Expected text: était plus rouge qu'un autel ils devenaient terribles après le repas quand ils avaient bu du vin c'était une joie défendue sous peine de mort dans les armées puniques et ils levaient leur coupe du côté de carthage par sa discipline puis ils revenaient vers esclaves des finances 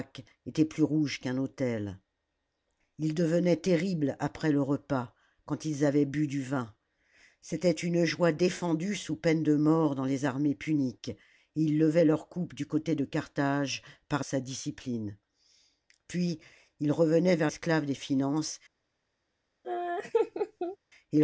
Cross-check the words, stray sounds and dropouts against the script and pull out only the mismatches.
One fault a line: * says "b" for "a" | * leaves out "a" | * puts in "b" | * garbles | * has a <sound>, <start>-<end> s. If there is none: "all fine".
* has a laugh, 19.6-20.8 s